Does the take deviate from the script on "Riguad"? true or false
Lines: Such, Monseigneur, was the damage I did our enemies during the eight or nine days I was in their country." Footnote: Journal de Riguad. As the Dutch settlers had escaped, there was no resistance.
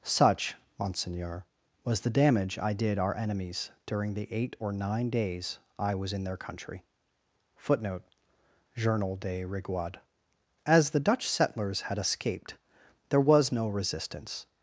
false